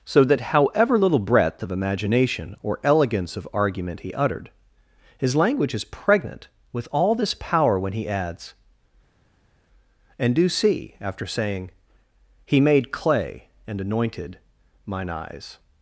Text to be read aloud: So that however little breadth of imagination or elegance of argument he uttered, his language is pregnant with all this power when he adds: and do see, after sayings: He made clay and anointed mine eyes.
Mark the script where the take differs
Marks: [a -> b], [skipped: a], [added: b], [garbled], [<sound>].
So that however little breadth of imagination or elegance of argument he uttered, his language is pregnant with all this power when he adds: and do see, after [sayings: -> saying] He made clay and anointed mine eyes.